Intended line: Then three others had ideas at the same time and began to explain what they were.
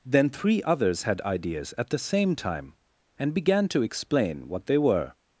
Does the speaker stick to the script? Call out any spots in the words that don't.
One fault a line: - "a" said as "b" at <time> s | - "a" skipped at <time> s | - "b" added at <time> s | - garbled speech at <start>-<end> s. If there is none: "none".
none